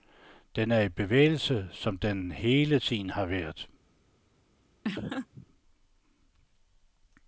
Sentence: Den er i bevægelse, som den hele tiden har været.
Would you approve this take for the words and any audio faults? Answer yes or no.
no